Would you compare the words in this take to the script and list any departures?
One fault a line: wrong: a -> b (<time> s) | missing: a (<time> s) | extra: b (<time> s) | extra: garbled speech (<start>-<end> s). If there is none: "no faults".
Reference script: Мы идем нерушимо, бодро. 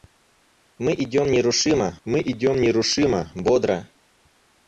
extra: мы идем нерушимо (2.1 s)